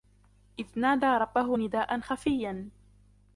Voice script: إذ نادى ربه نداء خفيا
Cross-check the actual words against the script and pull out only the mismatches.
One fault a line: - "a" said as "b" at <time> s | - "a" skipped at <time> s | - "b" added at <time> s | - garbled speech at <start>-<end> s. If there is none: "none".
none